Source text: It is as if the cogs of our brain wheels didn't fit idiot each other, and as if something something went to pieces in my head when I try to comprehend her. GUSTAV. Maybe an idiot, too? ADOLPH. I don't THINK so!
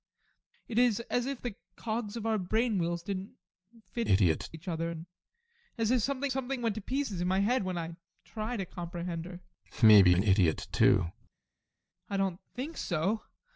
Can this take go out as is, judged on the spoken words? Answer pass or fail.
pass